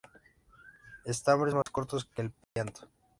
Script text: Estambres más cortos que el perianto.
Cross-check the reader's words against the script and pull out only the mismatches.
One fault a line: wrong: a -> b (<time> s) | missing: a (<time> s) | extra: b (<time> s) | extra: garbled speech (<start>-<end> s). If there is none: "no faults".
no faults